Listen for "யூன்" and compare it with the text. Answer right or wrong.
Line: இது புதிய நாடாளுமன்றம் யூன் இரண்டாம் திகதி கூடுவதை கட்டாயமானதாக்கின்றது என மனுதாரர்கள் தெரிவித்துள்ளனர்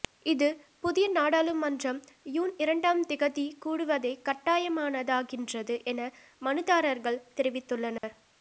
right